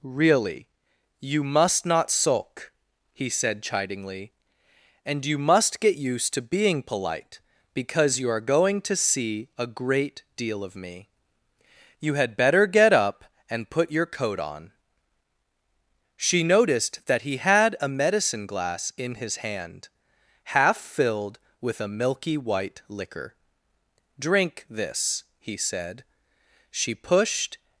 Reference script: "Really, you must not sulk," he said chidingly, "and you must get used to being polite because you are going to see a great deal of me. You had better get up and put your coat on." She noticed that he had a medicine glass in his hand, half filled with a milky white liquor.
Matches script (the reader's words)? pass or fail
fail